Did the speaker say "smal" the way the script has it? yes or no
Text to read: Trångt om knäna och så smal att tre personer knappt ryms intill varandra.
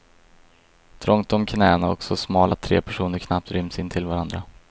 yes